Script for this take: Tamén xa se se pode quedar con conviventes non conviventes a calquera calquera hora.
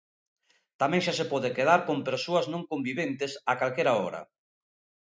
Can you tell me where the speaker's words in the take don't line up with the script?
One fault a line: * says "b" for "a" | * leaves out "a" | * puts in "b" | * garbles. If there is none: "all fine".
* leaves out "se"
* says "persoas" for "conviventes"
* leaves out "calquera"